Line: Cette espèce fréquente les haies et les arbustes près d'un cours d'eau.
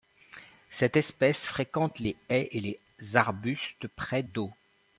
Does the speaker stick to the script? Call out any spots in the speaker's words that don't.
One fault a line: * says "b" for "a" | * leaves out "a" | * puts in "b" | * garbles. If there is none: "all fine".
* leaves out "d'un cours"